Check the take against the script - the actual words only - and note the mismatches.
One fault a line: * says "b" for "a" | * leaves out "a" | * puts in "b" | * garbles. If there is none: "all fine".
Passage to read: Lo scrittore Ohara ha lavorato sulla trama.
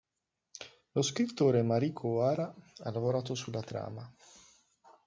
* puts in "Mariko"